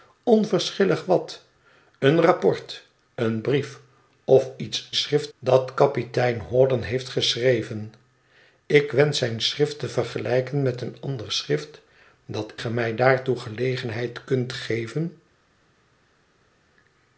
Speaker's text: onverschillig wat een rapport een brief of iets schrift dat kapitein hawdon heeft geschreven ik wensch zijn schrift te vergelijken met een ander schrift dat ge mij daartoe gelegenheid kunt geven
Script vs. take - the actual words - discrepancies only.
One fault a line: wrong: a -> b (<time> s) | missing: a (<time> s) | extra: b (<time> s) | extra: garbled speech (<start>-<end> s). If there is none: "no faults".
no faults